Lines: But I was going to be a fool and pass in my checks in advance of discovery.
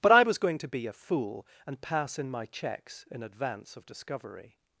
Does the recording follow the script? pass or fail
pass